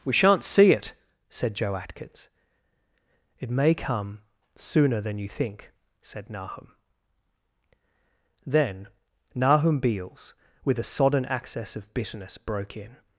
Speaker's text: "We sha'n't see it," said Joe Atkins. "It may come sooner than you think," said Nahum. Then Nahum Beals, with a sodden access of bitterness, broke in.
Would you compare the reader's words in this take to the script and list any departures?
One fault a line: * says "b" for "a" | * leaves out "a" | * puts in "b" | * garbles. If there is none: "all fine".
all fine